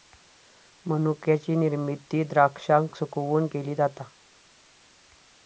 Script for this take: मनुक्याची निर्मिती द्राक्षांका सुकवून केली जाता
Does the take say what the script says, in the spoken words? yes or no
yes